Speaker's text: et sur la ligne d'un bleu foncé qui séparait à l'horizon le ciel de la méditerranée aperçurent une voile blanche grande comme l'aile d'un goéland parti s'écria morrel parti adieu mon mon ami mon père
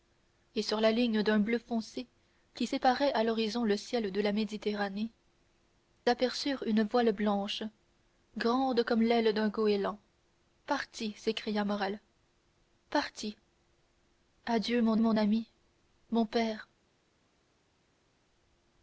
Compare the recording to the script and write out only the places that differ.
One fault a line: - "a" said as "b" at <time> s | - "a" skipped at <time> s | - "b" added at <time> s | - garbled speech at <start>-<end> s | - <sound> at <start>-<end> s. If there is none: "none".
none